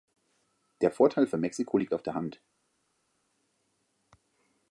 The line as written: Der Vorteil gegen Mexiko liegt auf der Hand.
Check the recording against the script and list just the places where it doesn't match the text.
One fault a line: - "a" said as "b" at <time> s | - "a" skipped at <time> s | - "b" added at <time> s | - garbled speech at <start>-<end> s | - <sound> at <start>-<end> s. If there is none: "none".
- "gegen" said as "für" at 1.3 s